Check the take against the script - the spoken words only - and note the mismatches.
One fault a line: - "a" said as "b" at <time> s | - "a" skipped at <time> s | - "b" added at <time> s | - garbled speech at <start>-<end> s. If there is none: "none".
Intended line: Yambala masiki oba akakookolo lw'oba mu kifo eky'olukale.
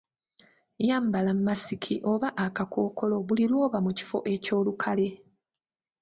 - "buli" added at 3.3 s